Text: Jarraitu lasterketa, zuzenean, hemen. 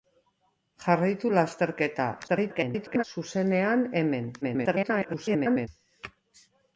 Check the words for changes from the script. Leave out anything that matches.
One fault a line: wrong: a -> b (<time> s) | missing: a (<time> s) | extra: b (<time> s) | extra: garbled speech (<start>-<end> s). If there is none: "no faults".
extra: garbled speech (2.3-3.0 s)
extra: garbled speech (4.4-5.7 s)